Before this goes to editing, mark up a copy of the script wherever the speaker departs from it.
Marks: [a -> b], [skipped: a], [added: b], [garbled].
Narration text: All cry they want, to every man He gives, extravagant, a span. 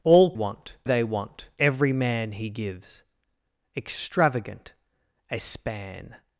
All [cry -> want] they want, [skipped: to] every man He gives, extravagant, a span.